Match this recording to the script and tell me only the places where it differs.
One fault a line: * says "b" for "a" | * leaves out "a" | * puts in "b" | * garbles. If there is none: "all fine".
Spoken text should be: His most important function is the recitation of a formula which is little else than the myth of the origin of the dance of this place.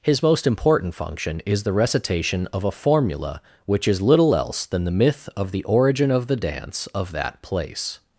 * says "that" for "this"